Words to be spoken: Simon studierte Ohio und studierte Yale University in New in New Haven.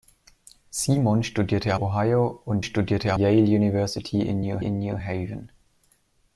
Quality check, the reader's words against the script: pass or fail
pass